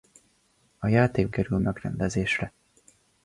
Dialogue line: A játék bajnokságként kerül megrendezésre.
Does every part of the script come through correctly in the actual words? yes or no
no